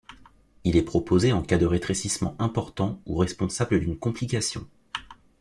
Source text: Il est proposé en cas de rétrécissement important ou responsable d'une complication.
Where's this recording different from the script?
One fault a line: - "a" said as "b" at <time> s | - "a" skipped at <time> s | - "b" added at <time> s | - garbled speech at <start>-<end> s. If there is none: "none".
none